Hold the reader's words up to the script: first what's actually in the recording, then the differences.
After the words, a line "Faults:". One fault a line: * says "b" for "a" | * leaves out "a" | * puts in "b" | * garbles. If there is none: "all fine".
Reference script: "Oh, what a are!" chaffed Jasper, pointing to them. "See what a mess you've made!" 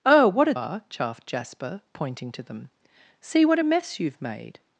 "Oh, what a are!" chaffed Jasper, pointing to them. "See what a mess you've made!"
Faults:
all fine